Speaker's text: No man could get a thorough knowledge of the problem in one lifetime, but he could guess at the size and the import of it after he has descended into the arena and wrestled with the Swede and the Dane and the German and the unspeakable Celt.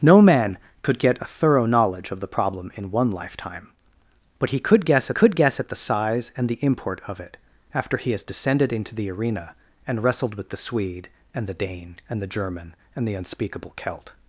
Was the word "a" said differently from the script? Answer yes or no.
no